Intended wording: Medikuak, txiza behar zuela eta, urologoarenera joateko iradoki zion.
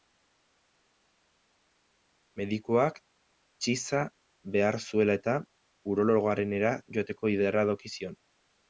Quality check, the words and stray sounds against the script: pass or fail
pass